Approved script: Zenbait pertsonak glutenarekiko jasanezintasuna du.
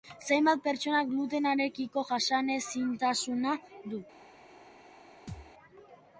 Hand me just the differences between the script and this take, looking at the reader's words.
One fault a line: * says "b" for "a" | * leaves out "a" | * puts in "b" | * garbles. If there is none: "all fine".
all fine